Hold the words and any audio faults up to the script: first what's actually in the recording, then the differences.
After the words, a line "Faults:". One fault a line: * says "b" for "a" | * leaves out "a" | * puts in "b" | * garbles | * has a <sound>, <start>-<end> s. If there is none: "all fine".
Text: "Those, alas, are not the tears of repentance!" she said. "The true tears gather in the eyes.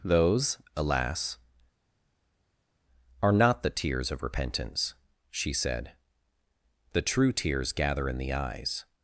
"Those, alas, are not the tears of repentance!" she said. "The true tears gather in the eyes.
Faults:
all fine